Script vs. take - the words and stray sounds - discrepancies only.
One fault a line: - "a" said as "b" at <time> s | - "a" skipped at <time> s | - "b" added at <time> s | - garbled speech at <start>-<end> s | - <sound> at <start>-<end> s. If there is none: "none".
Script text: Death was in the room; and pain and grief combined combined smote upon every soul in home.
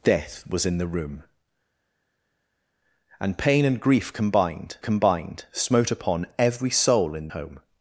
none